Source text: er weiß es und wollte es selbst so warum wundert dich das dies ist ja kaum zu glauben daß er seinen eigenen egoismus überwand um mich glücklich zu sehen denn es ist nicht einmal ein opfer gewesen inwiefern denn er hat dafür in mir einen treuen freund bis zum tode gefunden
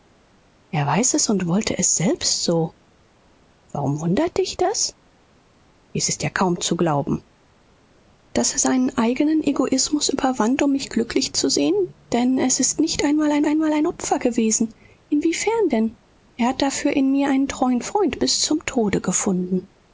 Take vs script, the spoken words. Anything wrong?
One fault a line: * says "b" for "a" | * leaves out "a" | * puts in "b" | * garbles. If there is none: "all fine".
* puts in "einmal ein"